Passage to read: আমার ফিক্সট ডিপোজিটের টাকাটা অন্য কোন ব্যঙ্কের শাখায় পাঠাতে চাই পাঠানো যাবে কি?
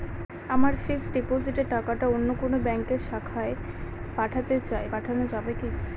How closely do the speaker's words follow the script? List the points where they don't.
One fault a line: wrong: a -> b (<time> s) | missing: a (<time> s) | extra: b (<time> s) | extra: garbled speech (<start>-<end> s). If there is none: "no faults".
no faults